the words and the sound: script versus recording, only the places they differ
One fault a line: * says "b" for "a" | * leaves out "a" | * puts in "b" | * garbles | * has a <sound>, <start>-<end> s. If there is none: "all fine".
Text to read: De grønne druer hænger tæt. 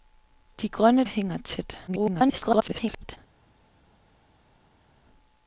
* leaves out "druer"
* garbles